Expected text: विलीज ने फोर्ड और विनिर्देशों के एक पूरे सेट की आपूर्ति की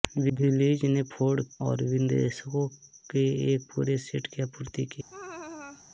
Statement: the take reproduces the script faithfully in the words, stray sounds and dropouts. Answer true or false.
false